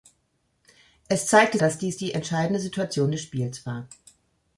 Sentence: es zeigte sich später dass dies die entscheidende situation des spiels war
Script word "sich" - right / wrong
wrong